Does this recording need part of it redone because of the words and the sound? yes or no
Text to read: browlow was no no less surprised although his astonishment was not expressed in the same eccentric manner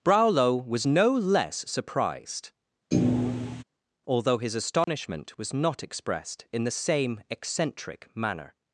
yes